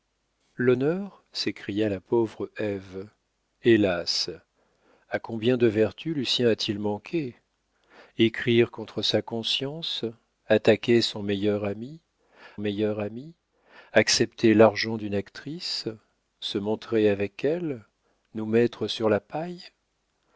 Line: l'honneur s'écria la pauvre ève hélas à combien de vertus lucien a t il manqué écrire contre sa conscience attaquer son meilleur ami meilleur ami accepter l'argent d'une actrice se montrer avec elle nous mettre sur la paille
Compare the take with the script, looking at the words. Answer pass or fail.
pass